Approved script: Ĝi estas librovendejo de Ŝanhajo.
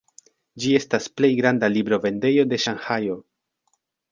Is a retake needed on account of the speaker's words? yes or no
yes